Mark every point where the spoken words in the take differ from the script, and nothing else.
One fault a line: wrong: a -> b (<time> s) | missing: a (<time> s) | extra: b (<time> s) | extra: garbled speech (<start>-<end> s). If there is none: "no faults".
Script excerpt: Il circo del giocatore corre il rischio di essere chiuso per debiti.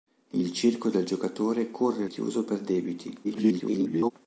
missing: rischio di essere (2.1 s)
extra: garbled speech (3.2-4.1 s)